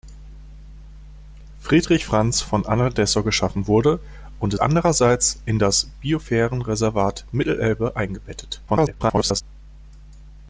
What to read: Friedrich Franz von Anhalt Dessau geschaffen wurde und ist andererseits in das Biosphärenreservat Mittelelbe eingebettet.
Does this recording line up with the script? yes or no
no